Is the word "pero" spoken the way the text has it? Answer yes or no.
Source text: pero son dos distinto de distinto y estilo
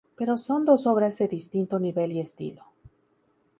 yes